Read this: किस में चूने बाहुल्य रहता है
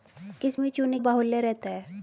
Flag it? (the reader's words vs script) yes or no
no